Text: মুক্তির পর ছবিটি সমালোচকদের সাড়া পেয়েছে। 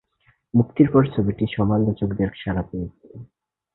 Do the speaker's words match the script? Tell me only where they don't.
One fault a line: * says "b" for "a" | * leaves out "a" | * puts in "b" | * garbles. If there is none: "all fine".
all fine